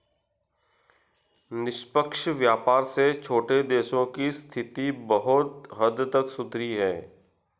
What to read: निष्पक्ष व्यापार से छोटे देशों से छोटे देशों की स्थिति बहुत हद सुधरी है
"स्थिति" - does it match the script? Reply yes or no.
yes